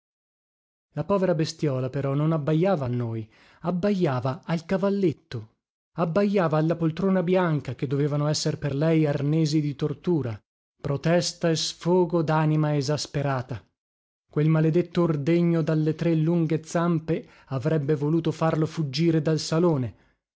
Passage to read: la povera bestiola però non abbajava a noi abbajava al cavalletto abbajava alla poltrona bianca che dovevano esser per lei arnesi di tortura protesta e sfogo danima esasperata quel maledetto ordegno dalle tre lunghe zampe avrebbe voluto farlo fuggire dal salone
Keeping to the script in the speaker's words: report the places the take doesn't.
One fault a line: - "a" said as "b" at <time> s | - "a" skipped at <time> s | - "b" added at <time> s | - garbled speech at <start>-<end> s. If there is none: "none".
none